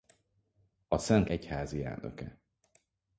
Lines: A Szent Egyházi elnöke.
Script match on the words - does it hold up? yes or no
yes